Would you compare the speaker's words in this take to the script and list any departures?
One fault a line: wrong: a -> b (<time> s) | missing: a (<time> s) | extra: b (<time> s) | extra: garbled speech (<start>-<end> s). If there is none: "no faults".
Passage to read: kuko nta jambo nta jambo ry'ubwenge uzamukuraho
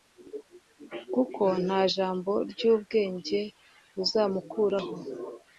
missing: nta jambo (2.3 s)